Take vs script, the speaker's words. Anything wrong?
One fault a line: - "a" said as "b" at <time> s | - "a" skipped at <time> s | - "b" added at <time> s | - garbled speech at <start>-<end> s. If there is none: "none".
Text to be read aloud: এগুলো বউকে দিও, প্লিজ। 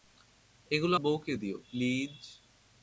none